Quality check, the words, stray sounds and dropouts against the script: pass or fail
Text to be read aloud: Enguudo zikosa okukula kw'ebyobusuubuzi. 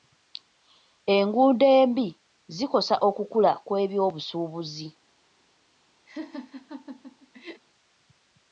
fail